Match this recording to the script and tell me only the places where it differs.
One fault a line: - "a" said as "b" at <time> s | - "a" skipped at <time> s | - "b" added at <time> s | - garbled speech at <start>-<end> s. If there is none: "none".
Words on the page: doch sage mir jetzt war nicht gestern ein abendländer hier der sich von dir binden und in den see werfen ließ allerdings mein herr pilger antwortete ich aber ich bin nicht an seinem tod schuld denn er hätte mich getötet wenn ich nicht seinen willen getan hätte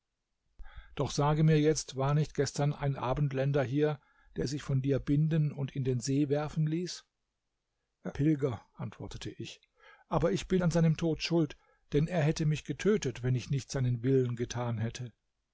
- "allerdings mein herr" skipped at 7.0 s
- "nicht" skipped at 10.6 s